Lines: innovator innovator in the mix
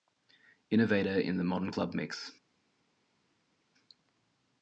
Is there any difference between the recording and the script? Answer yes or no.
yes